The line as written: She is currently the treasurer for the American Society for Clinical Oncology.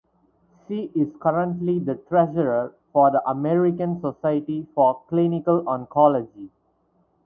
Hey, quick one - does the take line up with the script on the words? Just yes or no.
yes